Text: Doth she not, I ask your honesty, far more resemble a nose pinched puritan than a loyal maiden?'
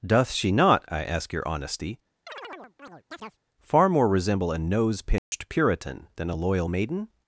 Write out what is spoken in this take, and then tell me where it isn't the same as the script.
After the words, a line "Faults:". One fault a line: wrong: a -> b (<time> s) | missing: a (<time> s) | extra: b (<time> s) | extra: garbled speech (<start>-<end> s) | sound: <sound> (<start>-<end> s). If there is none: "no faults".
Doth she not, I ask your honesty, far more resemble a nose pinched puritan than a loyal maiden?'
Faults:
sound: chirp (2.3-3.4 s)
sound: dropout (5.2-5.3 s)